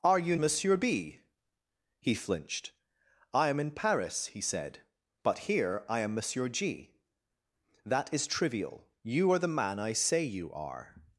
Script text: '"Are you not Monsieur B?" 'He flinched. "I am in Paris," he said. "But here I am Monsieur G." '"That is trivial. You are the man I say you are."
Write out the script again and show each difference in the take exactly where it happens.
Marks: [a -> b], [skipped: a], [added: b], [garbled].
'"Are you [skipped: not] Monsieur B?" 'He flinched. "I am in Paris," he said. "But here I am Monsieur G." '"That is trivial. You are the man I say you are."